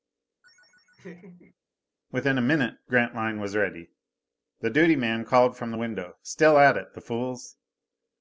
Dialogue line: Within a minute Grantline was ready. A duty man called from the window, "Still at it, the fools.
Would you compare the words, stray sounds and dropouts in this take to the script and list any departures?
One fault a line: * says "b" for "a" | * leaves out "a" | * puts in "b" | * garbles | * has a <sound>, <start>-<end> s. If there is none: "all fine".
* has a laugh, 0.4-1.5 s
* says "The" for "A"